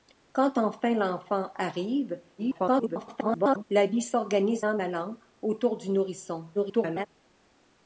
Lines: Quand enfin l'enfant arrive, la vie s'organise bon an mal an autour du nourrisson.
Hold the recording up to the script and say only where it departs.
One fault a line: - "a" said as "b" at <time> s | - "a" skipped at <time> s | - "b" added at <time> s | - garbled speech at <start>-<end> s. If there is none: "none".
- garbled speech at 2.4-3.6 s
- "bon" skipped at 4.6 s
- garbled speech at 6.5-7.1 s